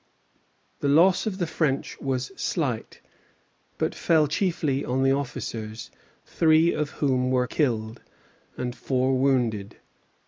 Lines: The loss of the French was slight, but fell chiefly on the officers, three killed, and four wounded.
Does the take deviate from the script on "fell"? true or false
false